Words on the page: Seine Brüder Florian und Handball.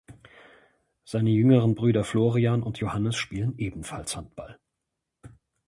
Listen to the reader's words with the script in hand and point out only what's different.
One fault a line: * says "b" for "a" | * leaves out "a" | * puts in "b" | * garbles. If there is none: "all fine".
* puts in "jüngeren"
* puts in "Johannes spielen ebenfalls"